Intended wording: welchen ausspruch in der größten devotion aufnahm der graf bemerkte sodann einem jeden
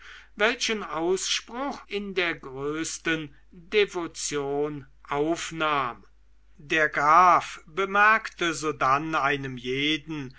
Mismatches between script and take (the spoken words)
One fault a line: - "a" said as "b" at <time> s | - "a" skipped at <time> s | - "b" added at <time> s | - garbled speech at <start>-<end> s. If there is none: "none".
none